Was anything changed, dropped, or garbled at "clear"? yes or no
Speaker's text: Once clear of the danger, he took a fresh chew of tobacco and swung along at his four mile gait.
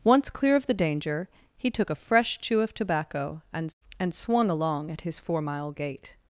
no